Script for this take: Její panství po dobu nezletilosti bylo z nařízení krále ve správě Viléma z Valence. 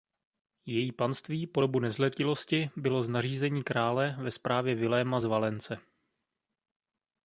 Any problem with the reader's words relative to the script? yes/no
no